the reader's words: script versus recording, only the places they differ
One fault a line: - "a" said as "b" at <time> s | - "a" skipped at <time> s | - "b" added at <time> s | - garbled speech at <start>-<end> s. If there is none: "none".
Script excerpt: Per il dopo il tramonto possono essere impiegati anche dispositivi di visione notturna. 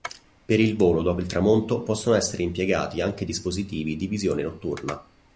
- "volo" added at 0.8 s